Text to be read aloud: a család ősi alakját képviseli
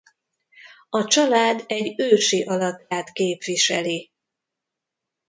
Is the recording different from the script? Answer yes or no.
yes